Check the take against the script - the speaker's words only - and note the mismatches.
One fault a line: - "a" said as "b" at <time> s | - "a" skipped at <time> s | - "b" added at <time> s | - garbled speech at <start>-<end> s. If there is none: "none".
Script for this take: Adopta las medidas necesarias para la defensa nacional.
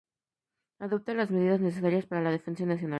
none